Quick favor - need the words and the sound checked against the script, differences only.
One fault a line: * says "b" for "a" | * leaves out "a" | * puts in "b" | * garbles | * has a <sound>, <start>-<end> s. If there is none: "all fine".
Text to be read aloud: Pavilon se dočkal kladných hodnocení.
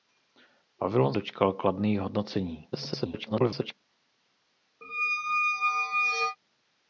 * leaves out "se"
* garbles
* has a squeak, 4.8-6.4 s